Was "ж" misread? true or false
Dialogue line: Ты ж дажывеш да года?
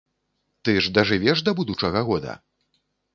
false